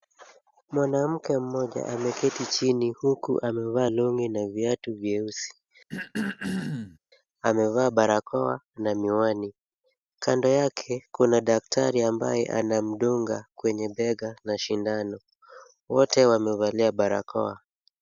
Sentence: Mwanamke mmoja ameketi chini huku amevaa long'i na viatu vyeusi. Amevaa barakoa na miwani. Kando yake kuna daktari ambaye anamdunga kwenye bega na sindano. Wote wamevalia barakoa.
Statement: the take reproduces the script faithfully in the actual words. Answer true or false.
true